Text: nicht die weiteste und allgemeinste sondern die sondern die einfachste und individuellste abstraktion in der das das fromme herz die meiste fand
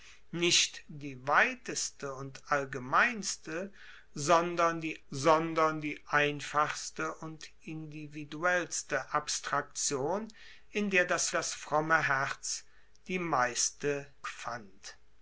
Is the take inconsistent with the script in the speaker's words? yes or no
no